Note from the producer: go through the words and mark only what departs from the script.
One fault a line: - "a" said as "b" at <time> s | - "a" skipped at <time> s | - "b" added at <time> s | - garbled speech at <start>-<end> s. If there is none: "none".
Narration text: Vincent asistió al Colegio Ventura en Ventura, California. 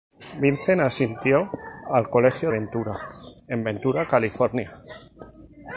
none